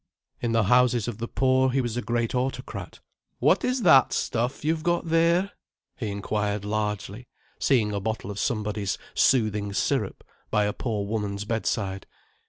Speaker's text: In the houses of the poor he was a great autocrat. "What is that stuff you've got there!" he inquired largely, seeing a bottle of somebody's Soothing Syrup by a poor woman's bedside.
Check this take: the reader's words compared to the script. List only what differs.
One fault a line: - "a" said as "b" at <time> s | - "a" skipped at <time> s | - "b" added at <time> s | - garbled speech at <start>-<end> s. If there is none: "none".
none